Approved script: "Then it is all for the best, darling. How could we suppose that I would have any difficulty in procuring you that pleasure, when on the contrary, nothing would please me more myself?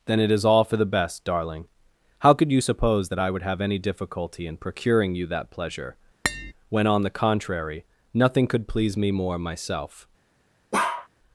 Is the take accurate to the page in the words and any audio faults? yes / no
no